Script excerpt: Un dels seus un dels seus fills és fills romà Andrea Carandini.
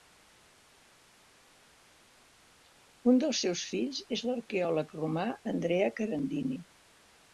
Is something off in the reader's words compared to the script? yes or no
yes